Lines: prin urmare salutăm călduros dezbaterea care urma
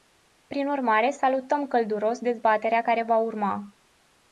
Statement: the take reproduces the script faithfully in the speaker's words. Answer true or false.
false